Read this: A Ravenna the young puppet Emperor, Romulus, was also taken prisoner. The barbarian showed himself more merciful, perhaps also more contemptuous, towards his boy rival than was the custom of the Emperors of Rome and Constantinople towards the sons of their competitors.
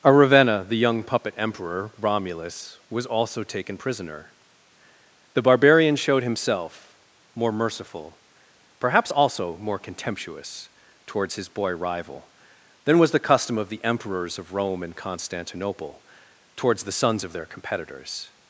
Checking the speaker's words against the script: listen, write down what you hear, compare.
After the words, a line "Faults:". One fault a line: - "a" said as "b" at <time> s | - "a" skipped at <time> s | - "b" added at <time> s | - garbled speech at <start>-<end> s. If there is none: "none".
A Ravenna the young puppet Emperor, Romulus, was also taken prisoner. The barbarian showed himself more merciful, perhaps also more contemptuous, towards his boy rival than was the custom of the Emperors of Rome and Constantinople towards the sons of their competitors.
Faults:
none